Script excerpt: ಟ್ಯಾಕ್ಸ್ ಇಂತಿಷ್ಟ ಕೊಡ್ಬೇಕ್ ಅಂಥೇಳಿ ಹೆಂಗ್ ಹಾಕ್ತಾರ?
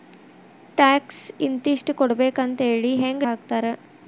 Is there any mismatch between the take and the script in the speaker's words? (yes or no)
no